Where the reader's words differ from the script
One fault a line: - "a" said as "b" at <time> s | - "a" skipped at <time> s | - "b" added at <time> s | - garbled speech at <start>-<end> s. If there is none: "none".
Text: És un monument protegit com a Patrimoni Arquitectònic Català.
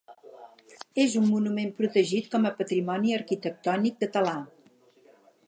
none